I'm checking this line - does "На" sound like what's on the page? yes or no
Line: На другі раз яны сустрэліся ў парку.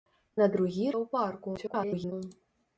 yes